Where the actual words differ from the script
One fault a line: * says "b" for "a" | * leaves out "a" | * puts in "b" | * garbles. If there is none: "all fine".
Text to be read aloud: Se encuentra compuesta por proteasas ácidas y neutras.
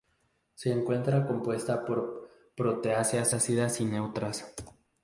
all fine